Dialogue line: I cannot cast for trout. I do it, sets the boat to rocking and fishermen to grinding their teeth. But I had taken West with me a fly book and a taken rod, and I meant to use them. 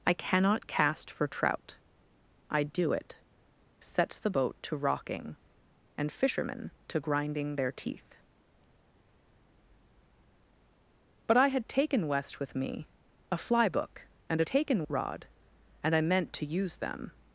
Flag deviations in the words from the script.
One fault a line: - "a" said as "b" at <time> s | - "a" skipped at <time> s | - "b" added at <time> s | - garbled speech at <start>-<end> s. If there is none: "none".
none